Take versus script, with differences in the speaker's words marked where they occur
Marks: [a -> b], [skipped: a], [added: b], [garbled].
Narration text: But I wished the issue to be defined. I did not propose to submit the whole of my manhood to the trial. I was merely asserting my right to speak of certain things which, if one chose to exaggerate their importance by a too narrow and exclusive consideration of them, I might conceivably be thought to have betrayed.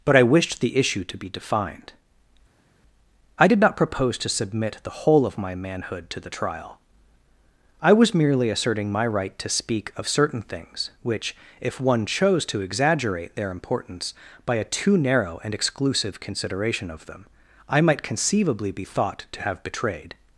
But I wished the issue to be defined. I did not propose to submit the whole of my manhood to the trial. I was merely asserting my right to speak of certain things which, if one chose to exaggerate their importance by a too narrow and exclusive consideration of them, I might conceivably be thought to have betrayed.